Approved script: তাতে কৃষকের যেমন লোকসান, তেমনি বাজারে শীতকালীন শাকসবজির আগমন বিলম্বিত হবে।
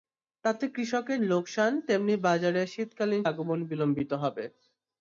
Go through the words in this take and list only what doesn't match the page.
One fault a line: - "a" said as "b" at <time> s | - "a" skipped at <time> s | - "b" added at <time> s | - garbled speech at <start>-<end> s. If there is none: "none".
- "যেমন" skipped at 1.2 s
- "শাকসবজির" skipped at 3.2 s